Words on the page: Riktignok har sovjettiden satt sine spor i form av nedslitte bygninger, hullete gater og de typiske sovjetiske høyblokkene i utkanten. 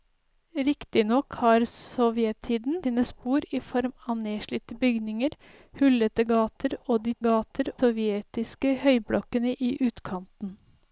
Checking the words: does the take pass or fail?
fail